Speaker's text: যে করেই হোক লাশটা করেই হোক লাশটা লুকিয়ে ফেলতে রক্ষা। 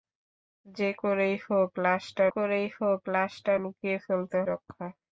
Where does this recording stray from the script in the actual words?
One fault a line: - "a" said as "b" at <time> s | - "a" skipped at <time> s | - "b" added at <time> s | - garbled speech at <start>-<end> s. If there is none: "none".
none